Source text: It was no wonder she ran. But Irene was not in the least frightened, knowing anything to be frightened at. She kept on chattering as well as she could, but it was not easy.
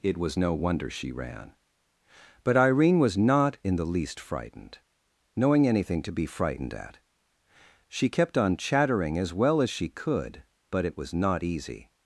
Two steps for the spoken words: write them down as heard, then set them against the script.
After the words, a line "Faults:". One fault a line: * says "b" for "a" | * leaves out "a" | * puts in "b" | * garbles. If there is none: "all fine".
It was no wonder she ran. But Irene was not in the least frightened, knowing anything to be frightened at. She kept on chattering as well as she could, but it was not easy.
Faults:
all fine